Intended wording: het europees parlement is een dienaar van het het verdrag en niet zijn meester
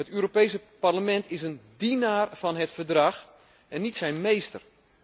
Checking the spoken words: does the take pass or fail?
fail